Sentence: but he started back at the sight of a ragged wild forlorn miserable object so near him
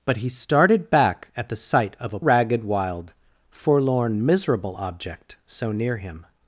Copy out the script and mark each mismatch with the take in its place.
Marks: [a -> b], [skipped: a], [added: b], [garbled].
but he started back at the sight of a ragged wild forlorn miserable object so near him